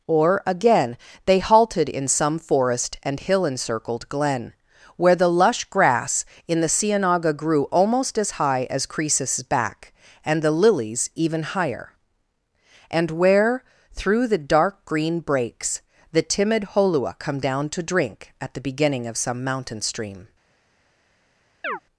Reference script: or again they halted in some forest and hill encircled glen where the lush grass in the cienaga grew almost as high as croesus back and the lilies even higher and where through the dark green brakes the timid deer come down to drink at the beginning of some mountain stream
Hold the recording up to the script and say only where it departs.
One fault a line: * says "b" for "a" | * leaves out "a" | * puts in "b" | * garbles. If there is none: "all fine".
* says "holua" for "deer"